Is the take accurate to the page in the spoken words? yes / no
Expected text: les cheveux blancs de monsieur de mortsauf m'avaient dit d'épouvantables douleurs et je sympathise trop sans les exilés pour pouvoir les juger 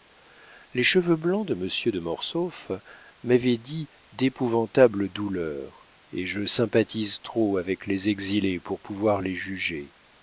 no